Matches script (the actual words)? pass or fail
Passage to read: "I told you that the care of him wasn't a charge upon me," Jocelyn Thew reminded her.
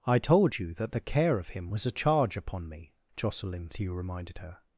fail